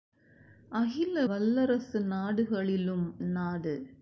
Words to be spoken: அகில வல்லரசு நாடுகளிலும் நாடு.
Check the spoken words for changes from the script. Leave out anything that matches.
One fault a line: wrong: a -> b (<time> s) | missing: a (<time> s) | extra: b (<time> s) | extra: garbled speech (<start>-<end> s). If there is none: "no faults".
no faults